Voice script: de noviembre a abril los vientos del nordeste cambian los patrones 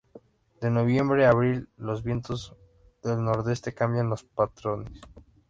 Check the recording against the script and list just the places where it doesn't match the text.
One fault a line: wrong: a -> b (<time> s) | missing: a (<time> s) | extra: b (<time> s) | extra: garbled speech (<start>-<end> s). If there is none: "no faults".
no faults